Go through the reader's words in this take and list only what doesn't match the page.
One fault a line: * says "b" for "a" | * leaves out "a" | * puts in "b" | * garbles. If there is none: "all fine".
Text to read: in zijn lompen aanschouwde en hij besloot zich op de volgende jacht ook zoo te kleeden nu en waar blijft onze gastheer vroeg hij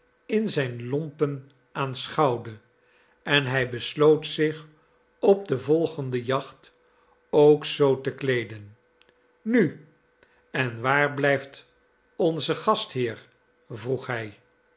all fine